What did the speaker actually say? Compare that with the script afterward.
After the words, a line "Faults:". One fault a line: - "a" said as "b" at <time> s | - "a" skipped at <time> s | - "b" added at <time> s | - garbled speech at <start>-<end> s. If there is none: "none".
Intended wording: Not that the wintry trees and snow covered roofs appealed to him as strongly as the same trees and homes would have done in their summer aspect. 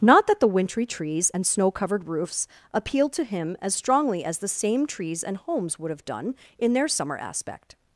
Not that the wintry trees and snow covered roofs appealed to him as strongly as the same trees and homes would have done in their summer aspect.
Faults:
none